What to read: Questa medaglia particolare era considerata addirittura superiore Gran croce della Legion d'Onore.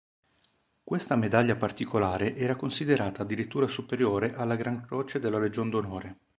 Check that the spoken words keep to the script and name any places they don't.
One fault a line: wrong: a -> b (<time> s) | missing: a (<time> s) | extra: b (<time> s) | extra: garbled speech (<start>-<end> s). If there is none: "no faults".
extra: alla (4.3 s)